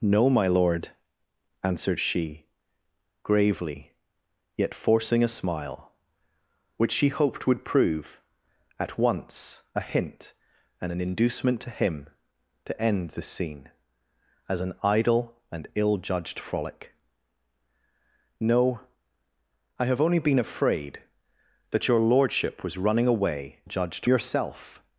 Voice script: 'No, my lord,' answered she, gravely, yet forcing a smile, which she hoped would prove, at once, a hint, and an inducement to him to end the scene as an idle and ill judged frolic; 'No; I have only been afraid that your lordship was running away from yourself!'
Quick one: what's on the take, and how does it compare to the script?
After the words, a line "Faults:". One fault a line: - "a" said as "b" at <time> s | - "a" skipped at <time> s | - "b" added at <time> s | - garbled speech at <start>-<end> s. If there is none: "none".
'No, my lord,' answered she, gravely, yet forcing a smile, which she hoped would prove, at once, a hint, and an inducement to him to end the scene as an idle and ill judged frolic; 'No; I have only been afraid that your lordship was running away judged yourself!'
Faults:
- "from" said as "judged" at 23.6 s